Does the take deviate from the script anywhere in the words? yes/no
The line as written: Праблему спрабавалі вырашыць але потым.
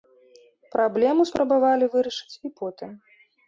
yes